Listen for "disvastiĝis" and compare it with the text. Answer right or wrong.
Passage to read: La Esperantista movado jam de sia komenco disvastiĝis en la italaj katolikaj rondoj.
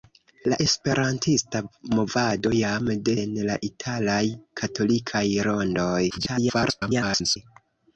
wrong